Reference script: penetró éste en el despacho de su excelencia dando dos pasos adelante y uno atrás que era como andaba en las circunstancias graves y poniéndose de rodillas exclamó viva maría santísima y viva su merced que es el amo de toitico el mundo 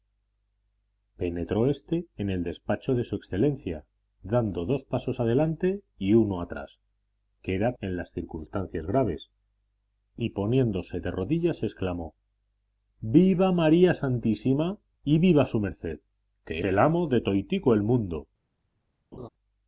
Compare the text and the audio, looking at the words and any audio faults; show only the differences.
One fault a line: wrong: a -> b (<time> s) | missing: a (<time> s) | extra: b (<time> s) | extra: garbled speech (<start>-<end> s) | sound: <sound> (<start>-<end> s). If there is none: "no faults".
missing: como andaba (7.7 s)
missing: es (16.6 s)
sound: laugh (19.1-19.3 s)